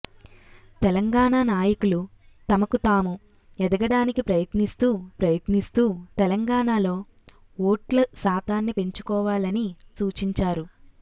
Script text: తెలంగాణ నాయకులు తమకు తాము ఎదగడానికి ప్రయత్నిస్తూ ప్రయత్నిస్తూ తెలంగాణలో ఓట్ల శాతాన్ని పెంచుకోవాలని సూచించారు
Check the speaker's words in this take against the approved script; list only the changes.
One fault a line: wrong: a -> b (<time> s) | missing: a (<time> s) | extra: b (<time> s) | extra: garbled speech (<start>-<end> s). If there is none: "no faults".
no faults